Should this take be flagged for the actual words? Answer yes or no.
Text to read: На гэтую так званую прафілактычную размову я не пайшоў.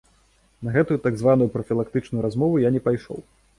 no